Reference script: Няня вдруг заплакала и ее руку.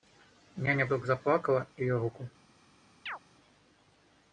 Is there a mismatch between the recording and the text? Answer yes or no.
no